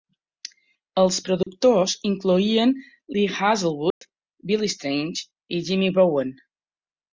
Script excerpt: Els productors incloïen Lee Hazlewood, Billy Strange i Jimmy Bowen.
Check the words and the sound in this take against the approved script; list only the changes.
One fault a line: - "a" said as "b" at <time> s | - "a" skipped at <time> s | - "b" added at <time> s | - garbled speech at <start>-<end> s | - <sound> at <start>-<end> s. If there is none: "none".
- dropout at 1.4-1.5 s
- dropout at 3.9-4.0 s